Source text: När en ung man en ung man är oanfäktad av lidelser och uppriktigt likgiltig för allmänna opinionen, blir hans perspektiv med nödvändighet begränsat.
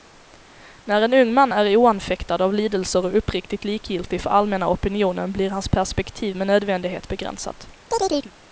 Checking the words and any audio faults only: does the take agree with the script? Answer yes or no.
no